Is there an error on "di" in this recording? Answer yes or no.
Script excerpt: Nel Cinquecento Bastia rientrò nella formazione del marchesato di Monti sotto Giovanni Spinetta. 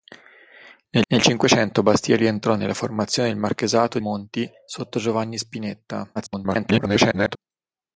yes